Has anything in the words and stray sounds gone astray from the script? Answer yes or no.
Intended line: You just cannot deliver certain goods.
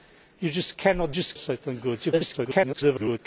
yes